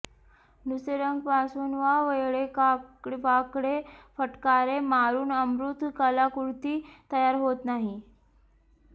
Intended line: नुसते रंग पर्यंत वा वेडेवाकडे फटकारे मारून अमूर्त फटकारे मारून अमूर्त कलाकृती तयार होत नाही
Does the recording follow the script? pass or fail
fail